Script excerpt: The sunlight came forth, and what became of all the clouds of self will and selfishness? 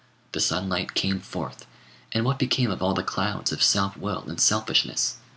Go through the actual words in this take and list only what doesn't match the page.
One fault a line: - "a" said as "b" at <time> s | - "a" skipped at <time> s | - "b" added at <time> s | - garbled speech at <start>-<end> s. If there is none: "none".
none